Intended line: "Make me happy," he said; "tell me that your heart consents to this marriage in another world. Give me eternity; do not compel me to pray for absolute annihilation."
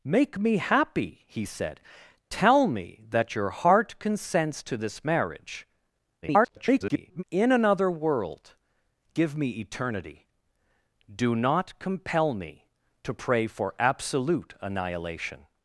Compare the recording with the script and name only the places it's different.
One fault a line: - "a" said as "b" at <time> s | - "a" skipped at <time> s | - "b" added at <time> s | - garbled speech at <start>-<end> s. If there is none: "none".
- garbled speech at 6.2-7.2 s